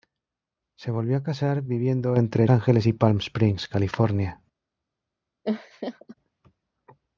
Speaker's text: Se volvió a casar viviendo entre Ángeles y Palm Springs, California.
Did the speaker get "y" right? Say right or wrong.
right